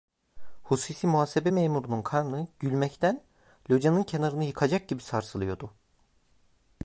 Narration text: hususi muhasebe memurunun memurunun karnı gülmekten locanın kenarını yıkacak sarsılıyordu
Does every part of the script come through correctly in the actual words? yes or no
no